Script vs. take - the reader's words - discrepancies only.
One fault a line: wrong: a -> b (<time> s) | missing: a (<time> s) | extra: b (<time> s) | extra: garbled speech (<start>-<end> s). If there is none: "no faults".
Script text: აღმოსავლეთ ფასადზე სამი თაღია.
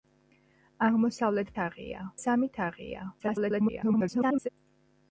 wrong: ფასადზე -> თაღია (1.6 s)
extra: garbled speech (3.2-4.5 s)